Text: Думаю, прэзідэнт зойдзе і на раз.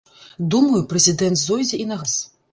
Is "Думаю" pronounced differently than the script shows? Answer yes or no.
no